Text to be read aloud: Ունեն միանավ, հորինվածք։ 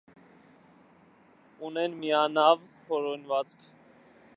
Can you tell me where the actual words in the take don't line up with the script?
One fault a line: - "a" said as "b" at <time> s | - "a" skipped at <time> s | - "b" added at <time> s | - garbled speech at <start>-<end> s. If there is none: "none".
none